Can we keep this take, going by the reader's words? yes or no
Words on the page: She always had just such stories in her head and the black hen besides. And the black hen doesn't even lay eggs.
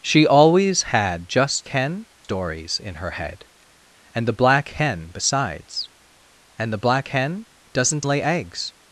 no